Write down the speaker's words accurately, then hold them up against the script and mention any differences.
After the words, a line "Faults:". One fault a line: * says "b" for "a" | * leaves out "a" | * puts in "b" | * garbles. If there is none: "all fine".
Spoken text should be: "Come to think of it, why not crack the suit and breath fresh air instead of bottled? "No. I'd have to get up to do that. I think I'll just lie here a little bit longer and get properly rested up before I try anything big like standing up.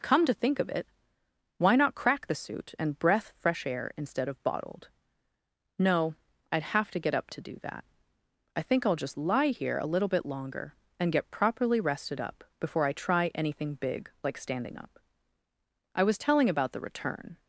"Come to think of it, why not crack the suit and breath fresh air instead of bottled? "No. I'd have to get up to do that. I think I'll just lie here a little bit longer and get properly rested up before I try anything big like standing up. "I was telling about the return
Faults:
* puts in "I was telling about the return"